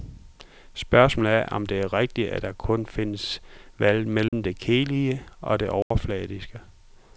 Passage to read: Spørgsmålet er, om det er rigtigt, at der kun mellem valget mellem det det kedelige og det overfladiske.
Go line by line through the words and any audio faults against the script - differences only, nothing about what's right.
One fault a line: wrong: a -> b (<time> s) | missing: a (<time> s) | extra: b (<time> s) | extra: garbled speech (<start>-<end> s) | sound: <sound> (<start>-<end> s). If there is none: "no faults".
wrong: mellem -> findes (2.9 s)
sound: dropout (4.3-4.3 s)
missing: det (4.6 s)
sound: dropout (5.8-5.9 s)